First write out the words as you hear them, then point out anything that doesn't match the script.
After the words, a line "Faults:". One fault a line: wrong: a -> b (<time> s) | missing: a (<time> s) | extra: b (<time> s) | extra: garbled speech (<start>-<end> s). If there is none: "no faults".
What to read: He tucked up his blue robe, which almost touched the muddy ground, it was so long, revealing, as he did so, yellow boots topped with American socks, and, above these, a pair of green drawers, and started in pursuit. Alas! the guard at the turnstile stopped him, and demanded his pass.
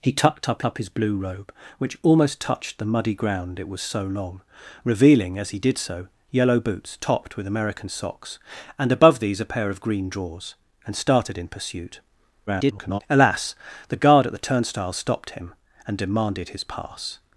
He tucked up up his blue robe, which almost touched the muddy ground, it was so long, revealing, as he did so, yellow boots topped with American socks, and, above these, a pair of green drawers, and started in pursuit. [garbled] Alas! the guard at the turnstile stopped him, and demanded his pass.
Faults:
extra: up (0.6 s)
extra: garbled speech (12.5-13.0 s)